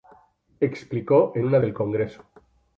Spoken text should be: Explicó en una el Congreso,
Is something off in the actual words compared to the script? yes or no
no